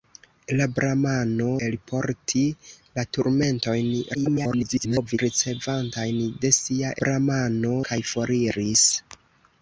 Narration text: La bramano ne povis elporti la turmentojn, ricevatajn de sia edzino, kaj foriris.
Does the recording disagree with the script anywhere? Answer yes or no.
yes